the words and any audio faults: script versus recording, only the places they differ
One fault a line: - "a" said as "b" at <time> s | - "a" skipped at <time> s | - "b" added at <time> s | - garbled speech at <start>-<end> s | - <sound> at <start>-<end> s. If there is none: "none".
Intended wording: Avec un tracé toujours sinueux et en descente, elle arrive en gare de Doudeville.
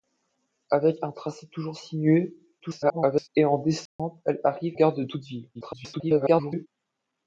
- garbled speech at 2.6-3.3 s
- dropout at 3.9-4.0 s
- "en" skipped at 4.7 s
- garbled speech at 5.5-6.7 s